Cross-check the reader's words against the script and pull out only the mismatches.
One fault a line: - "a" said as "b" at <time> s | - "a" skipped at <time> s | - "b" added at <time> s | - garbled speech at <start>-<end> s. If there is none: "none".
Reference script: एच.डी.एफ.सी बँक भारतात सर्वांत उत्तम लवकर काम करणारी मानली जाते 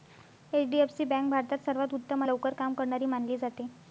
none